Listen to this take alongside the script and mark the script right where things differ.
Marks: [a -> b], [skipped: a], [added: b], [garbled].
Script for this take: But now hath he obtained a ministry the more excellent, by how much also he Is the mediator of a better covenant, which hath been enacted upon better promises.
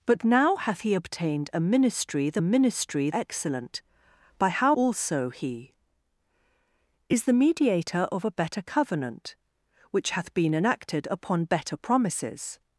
But now hath he obtained a ministry the [more -> ministry] excellent, by how [skipped: much] also he Is the mediator of a better covenant, which hath been enacted upon better promises.